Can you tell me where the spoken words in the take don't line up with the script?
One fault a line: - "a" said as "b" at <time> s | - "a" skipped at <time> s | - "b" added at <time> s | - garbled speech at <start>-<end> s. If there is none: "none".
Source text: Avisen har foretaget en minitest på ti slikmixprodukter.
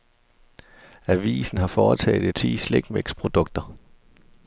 - "en minitest på" skipped at 2.3 s